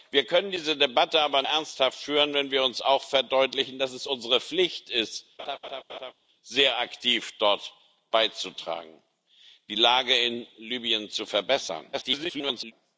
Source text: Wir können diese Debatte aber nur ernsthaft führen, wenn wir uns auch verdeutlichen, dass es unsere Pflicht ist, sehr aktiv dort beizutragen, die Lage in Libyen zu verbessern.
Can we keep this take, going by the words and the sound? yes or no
no